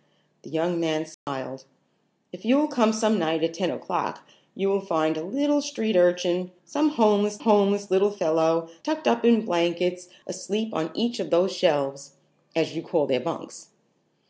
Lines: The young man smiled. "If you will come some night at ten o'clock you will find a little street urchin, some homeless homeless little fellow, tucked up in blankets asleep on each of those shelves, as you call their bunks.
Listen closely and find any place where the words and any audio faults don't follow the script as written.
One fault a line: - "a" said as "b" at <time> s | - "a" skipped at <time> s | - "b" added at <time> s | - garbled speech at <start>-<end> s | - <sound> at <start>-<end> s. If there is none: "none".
- dropout at 1.1-1.3 s